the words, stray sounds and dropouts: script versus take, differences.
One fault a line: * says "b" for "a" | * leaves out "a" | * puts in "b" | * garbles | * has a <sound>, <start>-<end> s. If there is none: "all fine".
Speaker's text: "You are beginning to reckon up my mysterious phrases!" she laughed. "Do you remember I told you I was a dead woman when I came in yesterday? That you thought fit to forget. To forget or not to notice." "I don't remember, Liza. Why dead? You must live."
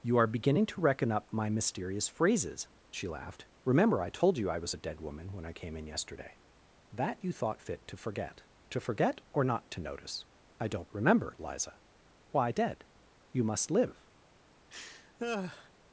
* leaves out "Do you"
* has a laugh, 14.7-15.7 s